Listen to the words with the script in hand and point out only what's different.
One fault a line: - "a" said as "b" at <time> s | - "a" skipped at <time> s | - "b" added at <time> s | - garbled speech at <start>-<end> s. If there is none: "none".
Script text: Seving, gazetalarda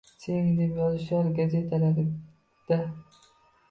- "deb yozishar" added at 0.6 s